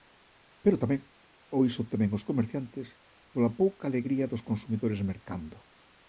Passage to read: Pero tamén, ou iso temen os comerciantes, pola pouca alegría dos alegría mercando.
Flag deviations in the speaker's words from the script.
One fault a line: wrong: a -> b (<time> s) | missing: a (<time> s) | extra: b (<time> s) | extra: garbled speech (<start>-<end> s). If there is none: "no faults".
wrong: alegría -> consumidores (4.5 s)